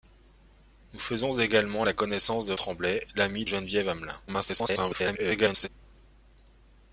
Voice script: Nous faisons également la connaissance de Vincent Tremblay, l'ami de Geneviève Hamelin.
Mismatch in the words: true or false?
true